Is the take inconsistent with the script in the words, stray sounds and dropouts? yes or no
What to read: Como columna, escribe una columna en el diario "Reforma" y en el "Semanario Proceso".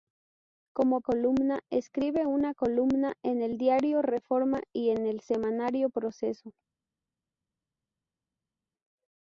no